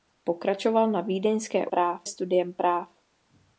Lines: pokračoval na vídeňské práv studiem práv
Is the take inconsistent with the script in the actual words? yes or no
no